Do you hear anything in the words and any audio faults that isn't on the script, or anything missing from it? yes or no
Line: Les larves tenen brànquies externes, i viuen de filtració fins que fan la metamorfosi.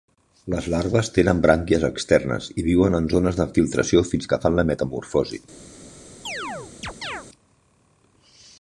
yes